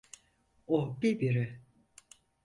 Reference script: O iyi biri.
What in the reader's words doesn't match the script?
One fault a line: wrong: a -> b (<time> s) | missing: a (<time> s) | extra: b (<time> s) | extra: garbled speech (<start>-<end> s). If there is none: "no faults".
no faults